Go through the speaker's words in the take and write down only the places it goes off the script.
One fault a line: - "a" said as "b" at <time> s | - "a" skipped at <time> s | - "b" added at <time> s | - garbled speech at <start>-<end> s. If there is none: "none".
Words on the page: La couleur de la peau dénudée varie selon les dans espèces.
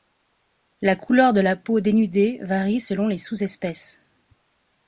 - "dans" said as "sous" at 3.2 s